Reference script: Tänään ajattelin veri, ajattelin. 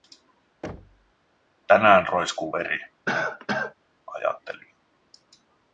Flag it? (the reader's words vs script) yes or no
yes